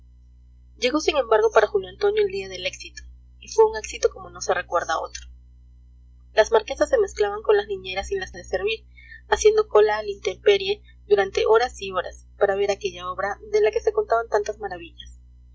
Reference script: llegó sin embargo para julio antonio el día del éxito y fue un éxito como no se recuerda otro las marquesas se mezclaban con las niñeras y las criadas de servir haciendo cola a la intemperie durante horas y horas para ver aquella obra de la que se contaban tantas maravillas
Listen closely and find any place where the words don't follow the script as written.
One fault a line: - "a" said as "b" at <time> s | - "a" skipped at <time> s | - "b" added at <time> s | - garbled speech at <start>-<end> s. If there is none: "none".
- "criadas" skipped at 8.3 s